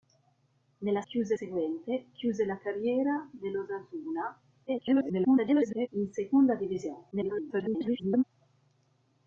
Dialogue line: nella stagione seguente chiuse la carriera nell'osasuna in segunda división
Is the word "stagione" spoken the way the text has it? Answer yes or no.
no